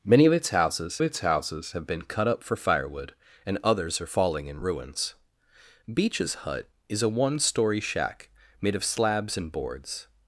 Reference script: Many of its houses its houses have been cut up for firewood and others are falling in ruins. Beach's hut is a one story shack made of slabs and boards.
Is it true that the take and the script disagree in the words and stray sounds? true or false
false